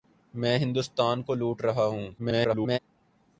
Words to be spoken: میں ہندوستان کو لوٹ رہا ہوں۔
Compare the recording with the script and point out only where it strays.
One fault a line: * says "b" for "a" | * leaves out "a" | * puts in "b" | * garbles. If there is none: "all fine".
* garbles